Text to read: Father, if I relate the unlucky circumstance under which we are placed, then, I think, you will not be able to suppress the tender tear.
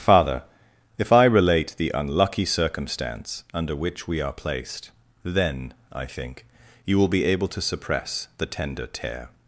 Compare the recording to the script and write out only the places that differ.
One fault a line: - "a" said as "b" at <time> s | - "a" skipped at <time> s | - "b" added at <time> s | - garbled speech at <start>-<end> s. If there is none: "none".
- "not" skipped at 7.1 s